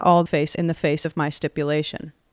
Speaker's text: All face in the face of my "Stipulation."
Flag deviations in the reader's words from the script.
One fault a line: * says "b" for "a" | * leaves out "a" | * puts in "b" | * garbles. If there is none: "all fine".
all fine